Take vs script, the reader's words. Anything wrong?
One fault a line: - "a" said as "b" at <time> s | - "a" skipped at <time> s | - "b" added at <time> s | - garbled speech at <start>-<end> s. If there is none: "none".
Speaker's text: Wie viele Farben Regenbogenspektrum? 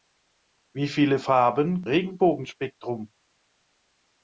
none